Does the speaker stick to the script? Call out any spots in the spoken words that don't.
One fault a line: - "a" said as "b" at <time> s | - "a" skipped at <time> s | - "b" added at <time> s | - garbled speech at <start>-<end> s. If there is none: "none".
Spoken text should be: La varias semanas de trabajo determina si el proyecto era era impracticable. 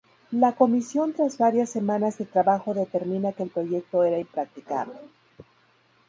- "comisión tras" added at 0.5 s
- "si" said as "que" at 3.3 s
- "era" skipped at 4.2 s